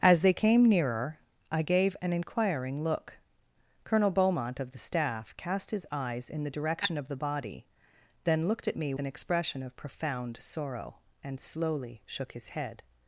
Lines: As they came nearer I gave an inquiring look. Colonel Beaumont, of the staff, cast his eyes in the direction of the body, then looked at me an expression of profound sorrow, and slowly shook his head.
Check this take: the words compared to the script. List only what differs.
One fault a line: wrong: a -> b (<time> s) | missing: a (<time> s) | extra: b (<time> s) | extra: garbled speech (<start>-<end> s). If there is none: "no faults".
no faults